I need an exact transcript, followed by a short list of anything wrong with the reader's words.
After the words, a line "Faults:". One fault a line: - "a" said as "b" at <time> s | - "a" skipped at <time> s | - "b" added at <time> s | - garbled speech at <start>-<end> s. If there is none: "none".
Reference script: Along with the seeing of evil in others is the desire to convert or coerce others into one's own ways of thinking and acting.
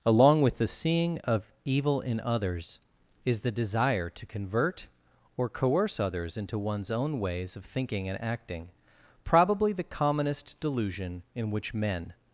Along with the seeing of evil in others is the desire to convert or coerce others into one's own ways of thinking and acting. Probably the commonest delusion in which men
Faults:
- "Probably the commonest delusion in which men" added at 9.3 s